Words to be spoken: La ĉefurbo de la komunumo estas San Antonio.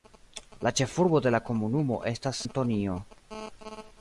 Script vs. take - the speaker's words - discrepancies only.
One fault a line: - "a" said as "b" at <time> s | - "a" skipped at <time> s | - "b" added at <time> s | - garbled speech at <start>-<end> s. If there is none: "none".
- "San" skipped at 2.4 s